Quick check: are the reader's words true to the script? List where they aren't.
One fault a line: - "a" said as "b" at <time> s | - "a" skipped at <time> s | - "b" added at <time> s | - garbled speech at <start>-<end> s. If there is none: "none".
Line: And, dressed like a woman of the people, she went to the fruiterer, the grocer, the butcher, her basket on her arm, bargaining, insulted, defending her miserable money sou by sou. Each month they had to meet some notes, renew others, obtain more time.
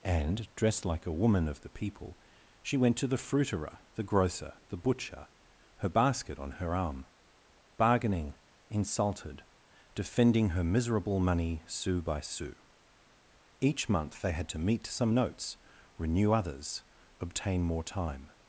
none